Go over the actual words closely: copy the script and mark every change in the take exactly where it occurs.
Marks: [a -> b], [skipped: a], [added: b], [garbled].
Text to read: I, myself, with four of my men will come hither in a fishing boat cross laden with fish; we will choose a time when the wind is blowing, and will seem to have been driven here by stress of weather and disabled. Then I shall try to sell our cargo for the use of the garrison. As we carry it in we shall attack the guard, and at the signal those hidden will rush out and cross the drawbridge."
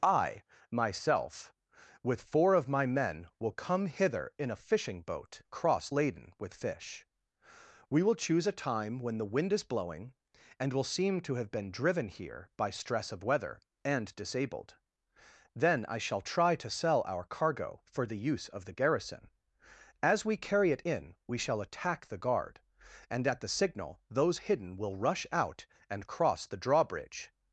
I, myself, with four of my men will come hither in a fishing boat cross laden with fish; we will choose a time when the wind is blowing, and will seem to have been driven here by stress of weather and disabled. Then I shall try to sell our cargo for the use of the garrison. As we carry it in we shall attack the guard, and at the signal those hidden will rush out and cross the drawbridge."